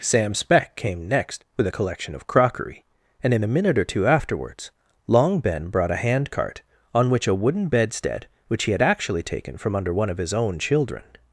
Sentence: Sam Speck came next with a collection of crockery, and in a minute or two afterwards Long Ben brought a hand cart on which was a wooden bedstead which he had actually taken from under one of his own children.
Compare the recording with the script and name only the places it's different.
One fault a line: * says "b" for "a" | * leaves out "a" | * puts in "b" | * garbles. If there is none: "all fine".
* leaves out "was"